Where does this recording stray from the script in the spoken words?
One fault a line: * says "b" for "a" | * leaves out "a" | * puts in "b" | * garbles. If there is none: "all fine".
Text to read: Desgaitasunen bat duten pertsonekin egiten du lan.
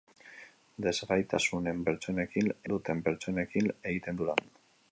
* says "pertsonekin" for "bat"